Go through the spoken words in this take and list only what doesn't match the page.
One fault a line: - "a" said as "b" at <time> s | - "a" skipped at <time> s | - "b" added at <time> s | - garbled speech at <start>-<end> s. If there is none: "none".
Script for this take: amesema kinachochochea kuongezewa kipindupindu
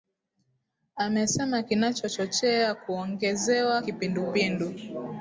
none